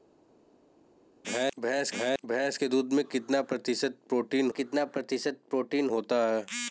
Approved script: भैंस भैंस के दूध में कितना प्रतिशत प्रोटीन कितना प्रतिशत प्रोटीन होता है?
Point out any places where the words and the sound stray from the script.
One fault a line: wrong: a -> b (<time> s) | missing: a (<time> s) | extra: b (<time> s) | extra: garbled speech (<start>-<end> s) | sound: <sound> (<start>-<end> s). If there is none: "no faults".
no faults